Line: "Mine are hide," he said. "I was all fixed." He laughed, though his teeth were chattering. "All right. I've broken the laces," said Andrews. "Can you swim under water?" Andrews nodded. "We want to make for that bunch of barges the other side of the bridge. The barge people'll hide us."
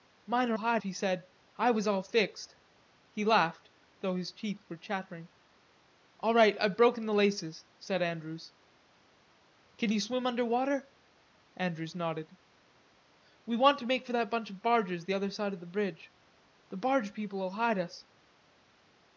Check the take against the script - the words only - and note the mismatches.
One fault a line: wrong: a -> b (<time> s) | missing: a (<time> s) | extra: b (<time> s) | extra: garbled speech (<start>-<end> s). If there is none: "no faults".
no faults